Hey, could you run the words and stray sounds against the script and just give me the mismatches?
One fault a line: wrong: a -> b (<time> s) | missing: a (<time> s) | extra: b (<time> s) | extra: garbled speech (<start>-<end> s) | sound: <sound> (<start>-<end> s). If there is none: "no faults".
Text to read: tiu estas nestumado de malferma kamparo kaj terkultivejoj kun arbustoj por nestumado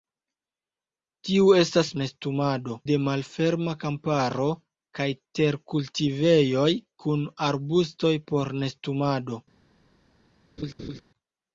sound: laugh (10.6-11.0 s)